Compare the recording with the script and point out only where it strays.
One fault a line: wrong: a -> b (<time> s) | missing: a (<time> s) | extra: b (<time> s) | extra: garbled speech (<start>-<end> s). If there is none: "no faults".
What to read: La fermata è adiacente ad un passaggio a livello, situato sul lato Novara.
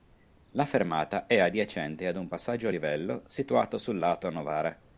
no faults